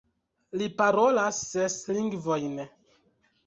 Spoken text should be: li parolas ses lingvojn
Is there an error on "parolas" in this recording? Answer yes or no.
no